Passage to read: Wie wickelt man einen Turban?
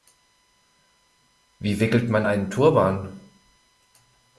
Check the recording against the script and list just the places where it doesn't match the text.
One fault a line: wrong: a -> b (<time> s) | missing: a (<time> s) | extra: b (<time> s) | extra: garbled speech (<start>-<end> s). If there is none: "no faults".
no faults